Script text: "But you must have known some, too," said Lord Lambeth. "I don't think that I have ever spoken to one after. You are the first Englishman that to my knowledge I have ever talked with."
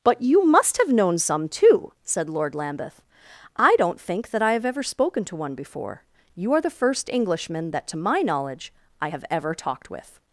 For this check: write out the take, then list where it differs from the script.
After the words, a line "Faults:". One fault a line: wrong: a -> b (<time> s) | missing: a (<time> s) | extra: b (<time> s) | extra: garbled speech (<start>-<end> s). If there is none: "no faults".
"But you must have known some, too," said Lord Lambeth. "I don't think that I have ever spoken to one before. You are the first Englishman that to my knowledge I have ever talked with."
Faults:
wrong: after -> before (5.5 s)